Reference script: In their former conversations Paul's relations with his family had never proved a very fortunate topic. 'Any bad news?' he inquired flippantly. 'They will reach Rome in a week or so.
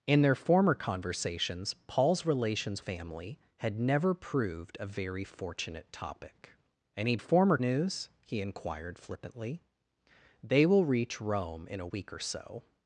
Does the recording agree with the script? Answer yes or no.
no